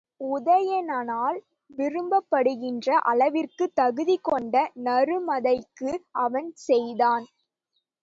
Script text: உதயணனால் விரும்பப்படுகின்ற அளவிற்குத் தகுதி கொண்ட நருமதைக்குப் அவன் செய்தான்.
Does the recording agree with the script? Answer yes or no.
yes